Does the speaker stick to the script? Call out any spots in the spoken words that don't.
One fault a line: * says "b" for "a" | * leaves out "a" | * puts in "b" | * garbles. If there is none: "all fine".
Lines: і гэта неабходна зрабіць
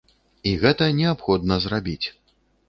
all fine